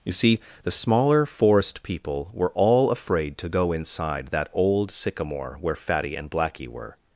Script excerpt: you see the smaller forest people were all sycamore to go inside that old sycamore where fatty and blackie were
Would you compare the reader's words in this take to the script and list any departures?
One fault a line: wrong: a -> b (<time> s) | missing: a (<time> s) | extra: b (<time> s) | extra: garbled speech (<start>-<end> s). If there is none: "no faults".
wrong: sycamore -> afraid (2.9 s)